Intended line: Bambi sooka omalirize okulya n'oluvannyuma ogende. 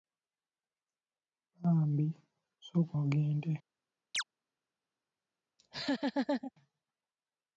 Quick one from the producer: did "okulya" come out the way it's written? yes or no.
no